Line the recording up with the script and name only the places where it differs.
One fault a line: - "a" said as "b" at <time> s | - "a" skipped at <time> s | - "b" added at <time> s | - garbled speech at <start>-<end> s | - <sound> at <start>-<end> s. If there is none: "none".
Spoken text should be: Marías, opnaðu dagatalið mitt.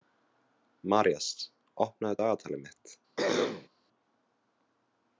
- throat clearing at 3.2-3.7 s